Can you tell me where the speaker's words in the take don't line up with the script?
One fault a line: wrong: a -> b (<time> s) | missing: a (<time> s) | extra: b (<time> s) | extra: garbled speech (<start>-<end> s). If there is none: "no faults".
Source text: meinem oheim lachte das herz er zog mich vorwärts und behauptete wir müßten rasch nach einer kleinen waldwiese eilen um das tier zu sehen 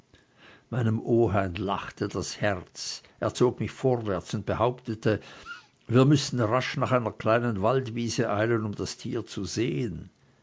no faults